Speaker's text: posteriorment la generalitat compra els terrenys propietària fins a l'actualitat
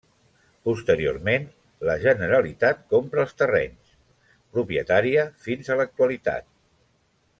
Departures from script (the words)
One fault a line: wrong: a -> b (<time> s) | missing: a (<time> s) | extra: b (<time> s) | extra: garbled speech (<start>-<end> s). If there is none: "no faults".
no faults